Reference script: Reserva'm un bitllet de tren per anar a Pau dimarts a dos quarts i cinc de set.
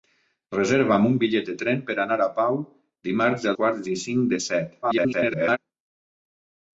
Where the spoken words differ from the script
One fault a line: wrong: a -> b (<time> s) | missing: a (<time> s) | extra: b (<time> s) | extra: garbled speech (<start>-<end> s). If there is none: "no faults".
missing: dos (3.5 s)
extra: garbled speech (4.8-5.6 s)